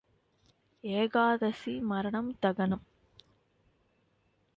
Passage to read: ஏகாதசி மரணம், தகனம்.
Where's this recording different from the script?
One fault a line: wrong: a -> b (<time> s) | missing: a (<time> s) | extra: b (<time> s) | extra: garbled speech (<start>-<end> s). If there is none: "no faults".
no faults